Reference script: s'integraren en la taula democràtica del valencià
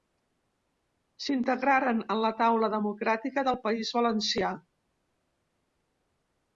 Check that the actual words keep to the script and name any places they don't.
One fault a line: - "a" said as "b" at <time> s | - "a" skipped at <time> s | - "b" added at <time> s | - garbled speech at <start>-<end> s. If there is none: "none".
- "país" added at 3.7 s